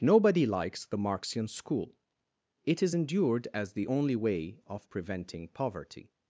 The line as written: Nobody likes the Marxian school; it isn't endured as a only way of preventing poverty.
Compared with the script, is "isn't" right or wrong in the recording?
wrong